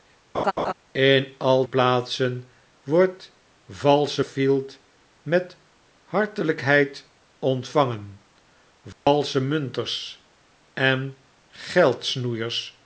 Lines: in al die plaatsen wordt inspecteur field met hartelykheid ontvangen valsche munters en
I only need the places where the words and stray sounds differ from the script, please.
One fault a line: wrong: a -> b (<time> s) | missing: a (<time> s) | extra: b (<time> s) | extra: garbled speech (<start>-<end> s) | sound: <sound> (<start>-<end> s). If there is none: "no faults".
sound: laugh (0.3-0.7 s)
missing: die (1.7 s)
wrong: inspecteur -> valsche (3.7 s)
sound: dropout (8.9-9.1 s)